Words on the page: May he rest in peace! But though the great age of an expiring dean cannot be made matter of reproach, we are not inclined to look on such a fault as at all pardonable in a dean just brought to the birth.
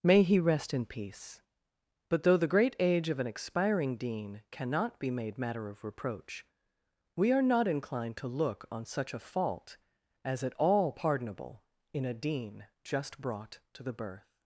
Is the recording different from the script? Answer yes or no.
no